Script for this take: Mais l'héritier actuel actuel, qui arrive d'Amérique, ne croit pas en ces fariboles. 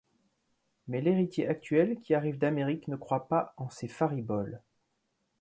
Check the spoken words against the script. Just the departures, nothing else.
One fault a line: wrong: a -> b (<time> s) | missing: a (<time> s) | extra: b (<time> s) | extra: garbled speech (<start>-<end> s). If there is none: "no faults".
missing: actuel (2.0 s)